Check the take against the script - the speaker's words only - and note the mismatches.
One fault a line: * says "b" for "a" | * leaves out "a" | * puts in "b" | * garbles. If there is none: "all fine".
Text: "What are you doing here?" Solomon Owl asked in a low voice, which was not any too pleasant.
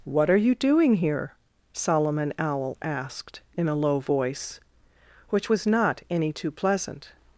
all fine